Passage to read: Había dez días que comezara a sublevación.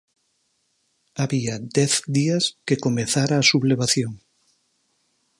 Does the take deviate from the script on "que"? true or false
false